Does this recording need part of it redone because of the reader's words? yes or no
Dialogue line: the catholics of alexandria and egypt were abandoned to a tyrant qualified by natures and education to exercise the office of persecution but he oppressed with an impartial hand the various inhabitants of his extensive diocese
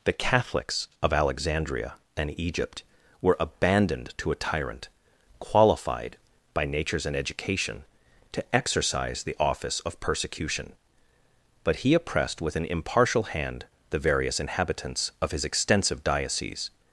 no